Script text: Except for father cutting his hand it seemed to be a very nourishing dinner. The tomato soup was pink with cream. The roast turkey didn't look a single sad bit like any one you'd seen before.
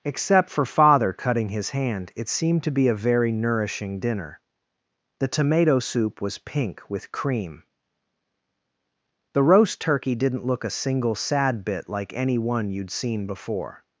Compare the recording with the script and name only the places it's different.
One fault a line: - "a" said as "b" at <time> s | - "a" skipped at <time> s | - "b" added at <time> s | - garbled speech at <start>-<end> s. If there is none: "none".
none